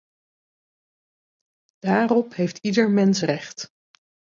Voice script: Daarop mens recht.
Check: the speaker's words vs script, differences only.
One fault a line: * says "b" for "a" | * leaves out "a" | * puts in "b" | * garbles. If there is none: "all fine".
* puts in "heeft ieder"